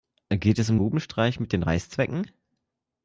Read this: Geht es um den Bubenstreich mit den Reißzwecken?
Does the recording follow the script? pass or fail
fail